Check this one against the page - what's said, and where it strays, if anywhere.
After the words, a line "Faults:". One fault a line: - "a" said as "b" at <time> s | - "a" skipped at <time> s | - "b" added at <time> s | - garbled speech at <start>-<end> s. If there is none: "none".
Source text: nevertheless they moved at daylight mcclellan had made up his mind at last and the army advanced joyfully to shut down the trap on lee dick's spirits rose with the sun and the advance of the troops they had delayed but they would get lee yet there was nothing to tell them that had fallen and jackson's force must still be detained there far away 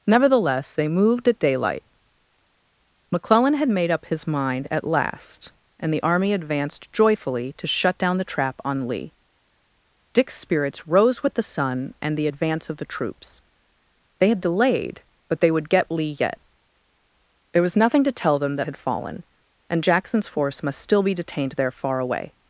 nevertheless they moved at daylight mcclellan had made up his mind at last and the army advanced joyfully to shut down the trap on lee dick's spirits rose with the sun and the advance of the troops they had delayed but they would get lee yet there was nothing to tell them that had fallen and jackson's force must still be detained there far away
Faults:
none